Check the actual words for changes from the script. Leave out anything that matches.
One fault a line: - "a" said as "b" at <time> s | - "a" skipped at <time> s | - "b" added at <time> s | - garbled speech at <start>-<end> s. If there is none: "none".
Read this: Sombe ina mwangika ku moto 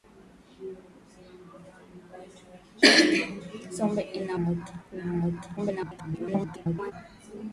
- "mwangika" said as "moto" at 4.4 s
- garbled speech at 5.6-6.9 s